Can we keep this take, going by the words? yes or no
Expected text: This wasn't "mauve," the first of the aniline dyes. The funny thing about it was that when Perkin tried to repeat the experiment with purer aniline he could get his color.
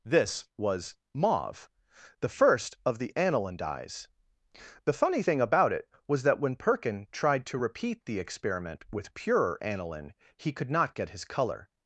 no